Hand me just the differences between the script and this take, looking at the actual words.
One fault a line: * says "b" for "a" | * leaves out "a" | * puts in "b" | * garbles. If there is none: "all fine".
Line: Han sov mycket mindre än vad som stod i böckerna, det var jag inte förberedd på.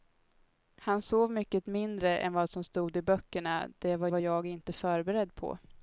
* puts in "var"